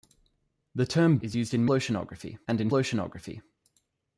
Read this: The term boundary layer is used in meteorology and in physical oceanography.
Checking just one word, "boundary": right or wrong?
wrong